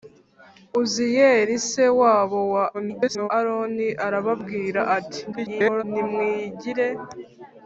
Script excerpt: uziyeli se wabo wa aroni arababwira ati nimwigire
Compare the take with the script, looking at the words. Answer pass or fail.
fail